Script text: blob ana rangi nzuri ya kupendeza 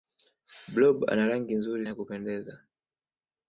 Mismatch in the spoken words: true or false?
false